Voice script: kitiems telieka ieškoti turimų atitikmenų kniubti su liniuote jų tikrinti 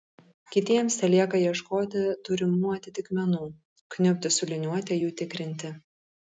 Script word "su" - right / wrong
right